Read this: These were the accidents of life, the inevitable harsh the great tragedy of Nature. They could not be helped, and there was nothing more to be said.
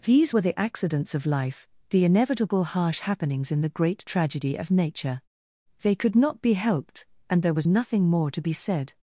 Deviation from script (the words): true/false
true